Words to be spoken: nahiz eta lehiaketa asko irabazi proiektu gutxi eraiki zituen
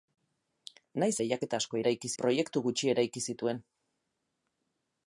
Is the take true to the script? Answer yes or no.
no